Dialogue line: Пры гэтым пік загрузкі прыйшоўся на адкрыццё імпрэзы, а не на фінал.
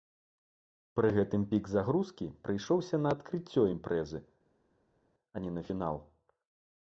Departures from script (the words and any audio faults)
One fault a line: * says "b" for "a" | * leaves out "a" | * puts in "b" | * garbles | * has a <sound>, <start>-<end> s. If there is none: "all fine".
all fine